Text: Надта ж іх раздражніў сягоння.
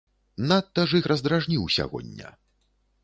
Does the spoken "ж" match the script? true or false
true